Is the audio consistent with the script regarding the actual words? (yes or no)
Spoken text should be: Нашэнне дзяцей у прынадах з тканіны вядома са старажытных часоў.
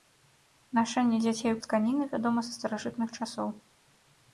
no